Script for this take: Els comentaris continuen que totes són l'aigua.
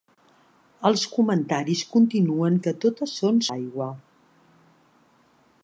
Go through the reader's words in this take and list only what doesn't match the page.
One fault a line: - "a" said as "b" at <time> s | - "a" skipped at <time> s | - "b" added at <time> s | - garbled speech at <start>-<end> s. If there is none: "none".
none